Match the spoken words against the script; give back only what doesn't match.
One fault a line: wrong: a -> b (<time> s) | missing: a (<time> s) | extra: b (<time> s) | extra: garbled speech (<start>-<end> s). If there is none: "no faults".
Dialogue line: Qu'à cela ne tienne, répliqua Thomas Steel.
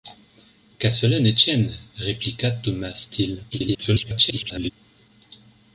extra: garbled speech (3.5-4.7 s)